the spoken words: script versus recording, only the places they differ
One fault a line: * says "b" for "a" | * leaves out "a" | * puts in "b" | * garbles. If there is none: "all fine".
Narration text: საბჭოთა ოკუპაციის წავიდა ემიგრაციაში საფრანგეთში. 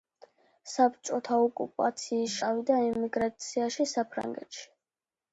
all fine